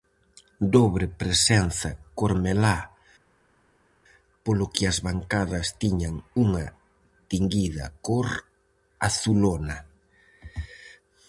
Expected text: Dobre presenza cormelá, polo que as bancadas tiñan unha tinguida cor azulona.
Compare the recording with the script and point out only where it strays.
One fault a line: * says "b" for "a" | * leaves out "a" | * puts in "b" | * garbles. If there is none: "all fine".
all fine